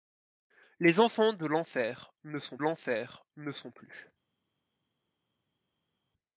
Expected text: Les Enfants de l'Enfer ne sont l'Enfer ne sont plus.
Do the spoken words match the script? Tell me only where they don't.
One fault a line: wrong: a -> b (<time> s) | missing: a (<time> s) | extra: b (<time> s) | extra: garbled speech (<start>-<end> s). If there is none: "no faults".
no faults